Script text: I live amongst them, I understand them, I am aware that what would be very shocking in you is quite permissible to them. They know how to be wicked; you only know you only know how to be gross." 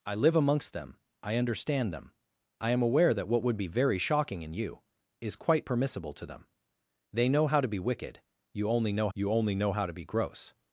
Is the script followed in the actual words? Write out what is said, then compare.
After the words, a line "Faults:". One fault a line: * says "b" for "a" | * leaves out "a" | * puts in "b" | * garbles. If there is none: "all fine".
I live amongst them, I understand them, I am aware that what would be very shocking in you is quite permissible to them. They know how to be wicked; you only know you only know how to be gross."
Faults:
all fine